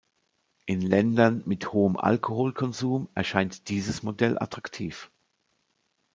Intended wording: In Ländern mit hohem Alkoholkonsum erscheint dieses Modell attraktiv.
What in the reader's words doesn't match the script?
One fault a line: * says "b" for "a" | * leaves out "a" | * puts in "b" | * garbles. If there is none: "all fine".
all fine